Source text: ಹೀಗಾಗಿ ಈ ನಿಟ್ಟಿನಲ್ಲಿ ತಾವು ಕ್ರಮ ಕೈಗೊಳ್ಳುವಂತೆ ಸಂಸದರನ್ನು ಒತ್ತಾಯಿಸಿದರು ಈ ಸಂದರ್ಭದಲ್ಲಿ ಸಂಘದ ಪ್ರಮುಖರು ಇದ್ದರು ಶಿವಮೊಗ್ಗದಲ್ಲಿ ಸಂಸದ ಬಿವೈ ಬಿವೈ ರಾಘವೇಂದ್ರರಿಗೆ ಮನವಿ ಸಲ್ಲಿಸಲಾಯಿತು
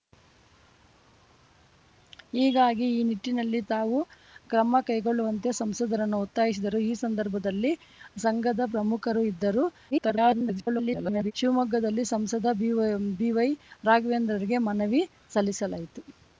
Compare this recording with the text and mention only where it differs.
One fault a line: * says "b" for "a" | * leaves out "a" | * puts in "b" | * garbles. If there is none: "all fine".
* garbles